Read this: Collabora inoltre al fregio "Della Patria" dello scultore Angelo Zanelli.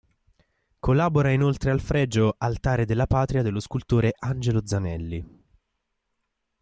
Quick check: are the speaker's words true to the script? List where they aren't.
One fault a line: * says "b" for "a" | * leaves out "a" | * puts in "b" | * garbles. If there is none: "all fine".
* puts in "Altare"